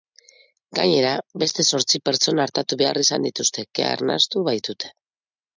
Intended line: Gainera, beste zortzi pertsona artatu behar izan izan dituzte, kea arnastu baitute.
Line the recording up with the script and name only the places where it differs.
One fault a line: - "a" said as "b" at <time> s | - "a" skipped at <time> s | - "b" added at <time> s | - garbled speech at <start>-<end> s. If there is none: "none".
- "izan" skipped at 3.3 s